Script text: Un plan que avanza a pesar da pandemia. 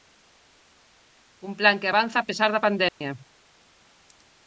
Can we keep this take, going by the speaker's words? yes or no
yes